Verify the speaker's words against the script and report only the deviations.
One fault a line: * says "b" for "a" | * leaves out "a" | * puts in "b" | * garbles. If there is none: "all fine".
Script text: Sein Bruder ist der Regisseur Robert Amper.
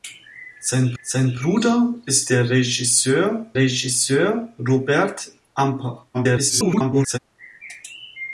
* puts in "sein"
* puts in "Regisseur"
* garbles